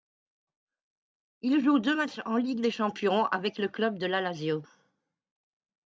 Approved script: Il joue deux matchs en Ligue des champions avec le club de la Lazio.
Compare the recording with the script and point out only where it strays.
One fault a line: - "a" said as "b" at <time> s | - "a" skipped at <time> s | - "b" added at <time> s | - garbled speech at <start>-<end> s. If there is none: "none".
none